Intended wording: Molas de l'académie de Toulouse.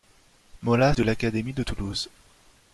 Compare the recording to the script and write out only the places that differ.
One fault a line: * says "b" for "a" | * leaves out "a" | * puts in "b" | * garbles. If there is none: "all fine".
all fine